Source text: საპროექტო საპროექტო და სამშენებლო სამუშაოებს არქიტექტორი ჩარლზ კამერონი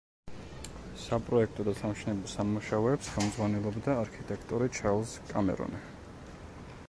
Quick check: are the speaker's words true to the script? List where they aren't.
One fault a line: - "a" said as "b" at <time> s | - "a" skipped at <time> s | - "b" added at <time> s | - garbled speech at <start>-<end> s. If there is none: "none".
- "საპროექტო" skipped at 1.6 s
- "ხელმძღვანელობდა" added at 3.1 s